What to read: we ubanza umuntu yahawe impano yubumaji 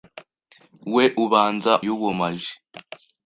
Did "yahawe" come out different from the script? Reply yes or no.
yes